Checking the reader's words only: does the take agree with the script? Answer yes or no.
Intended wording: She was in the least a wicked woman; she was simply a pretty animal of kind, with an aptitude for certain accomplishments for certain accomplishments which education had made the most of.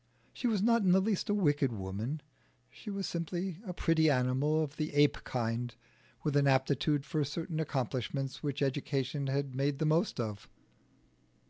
no